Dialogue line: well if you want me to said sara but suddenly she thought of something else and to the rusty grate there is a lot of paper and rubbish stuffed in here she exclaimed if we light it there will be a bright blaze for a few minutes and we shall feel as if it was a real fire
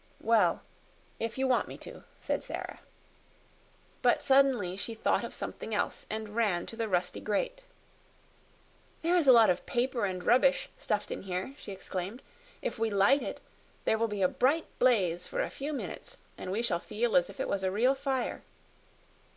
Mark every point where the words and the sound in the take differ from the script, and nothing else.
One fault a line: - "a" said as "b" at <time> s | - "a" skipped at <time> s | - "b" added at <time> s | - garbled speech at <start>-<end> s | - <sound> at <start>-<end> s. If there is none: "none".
- "ran" added at 6.4 s